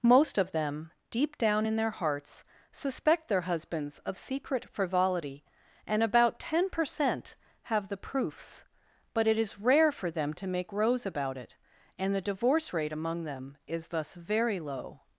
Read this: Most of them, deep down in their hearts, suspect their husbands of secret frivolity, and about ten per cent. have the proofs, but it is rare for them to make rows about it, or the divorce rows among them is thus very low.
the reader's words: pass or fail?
fail